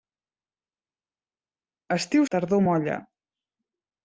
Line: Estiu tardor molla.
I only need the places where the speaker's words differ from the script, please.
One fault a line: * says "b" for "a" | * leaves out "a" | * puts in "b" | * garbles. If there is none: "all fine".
all fine